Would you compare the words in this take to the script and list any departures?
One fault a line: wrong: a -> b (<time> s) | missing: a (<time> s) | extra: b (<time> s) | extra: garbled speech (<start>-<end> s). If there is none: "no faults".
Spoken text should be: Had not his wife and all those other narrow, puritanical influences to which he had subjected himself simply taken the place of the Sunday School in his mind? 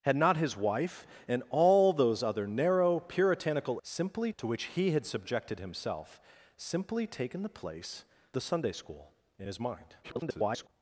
wrong: influences -> simply (3.8 s)
missing: of (8.0 s)
extra: garbled speech (10.0-10.7 s)